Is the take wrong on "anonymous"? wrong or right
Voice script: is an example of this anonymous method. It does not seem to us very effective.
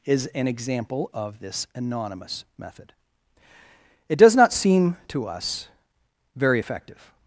right